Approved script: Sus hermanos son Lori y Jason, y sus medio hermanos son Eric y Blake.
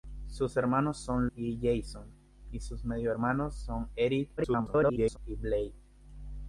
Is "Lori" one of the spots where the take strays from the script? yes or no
yes